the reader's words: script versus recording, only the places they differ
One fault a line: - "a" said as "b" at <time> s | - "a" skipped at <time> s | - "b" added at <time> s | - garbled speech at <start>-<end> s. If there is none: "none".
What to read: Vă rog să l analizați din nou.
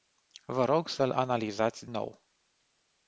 - "din" skipped at 1.9 s